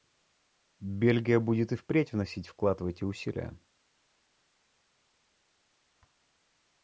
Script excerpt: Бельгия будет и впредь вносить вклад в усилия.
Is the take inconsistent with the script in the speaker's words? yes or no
yes